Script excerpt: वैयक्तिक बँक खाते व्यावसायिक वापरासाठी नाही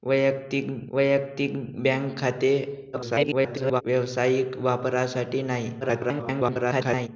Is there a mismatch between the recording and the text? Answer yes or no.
yes